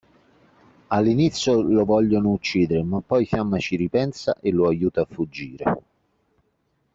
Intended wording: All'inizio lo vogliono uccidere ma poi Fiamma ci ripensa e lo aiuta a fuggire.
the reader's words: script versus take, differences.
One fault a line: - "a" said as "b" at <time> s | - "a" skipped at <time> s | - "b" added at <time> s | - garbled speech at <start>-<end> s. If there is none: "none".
none